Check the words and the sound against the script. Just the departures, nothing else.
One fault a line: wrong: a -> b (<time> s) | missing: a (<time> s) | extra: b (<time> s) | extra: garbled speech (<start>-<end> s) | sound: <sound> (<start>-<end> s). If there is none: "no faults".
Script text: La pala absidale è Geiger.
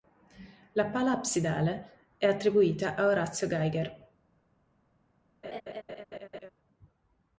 extra: attribuita a Orazio (2.3 s)
sound: laugh (5.4-6.5 s)